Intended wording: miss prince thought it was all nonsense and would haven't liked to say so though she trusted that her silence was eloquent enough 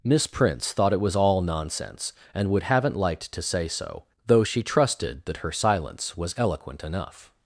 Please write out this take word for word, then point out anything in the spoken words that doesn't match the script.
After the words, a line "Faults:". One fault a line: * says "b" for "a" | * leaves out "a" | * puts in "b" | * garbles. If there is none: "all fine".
miss prince thought it was all nonsense and would haven't liked to say so though she trusted that her silence was eloquent enough
Faults:
all fine